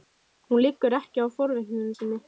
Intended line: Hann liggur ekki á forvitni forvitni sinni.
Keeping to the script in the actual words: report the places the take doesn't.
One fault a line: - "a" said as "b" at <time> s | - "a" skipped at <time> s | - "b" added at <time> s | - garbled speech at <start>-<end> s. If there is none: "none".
- "Hann" said as "Hún" at 0.5 s
- "forvitni" skipped at 1.8 s